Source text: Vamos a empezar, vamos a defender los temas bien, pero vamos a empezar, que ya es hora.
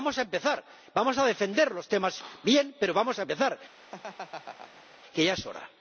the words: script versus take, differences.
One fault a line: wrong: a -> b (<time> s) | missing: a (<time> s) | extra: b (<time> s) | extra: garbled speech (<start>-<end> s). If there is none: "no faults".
no faults